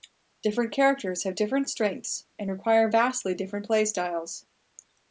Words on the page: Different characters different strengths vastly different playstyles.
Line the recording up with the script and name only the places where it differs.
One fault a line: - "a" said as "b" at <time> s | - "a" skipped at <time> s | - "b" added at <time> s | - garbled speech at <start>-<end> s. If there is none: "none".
- "have" added at 1.2 s
- "and require" added at 2.4 s